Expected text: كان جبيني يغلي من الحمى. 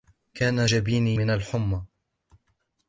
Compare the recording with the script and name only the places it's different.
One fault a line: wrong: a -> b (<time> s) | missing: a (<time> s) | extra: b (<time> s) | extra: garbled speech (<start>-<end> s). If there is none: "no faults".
missing: يغلي (1.2 s)